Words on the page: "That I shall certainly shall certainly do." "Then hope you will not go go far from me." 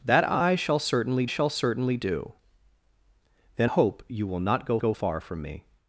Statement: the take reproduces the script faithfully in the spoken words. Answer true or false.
true